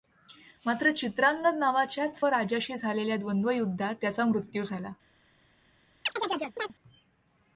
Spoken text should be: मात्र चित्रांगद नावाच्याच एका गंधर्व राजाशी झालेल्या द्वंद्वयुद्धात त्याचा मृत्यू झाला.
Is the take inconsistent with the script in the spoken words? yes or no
yes